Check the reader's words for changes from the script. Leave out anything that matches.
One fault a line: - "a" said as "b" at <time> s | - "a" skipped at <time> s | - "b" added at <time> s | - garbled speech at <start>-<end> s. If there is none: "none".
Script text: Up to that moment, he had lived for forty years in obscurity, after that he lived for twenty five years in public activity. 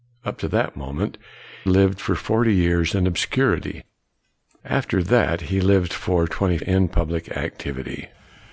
- "he had" skipped at 1.2 s
- "five years" skipped at 6.6 s